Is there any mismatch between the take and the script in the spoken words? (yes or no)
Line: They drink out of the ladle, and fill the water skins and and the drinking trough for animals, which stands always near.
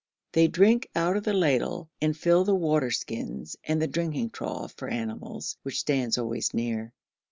yes